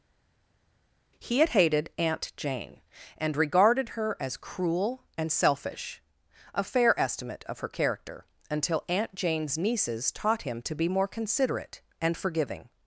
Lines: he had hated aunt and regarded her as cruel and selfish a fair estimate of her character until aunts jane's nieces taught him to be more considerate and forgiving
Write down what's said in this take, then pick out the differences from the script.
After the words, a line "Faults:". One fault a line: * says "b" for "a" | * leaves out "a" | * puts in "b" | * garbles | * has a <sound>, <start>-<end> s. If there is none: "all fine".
he had hated aunt jane and regarded her as cruel and selfish a fair estimate of her character until aunt jane's nieces taught him to be more considerate and forgiving
Faults:
* puts in "jane"
* says "aunt" for "aunts"